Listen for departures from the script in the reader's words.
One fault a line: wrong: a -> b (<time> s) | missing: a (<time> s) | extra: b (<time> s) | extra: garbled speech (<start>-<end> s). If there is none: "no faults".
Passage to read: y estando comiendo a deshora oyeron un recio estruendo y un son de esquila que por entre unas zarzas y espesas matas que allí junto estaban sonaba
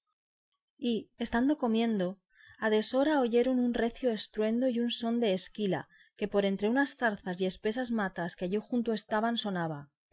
no faults